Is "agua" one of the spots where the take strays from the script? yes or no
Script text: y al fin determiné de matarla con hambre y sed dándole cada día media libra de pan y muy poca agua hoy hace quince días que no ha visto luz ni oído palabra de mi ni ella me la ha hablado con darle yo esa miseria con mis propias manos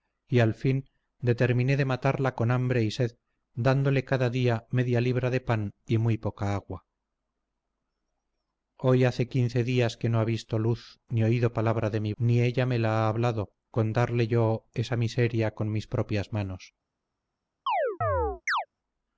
no